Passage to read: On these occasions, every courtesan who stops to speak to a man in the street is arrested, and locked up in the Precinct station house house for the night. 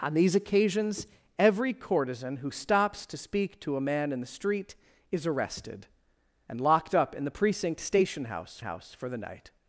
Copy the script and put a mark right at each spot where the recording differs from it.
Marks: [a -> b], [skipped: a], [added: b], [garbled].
On these occasions, every courtesan who stops to speak to a man in the street is arrested, and locked up in the Precinct station house house for the night.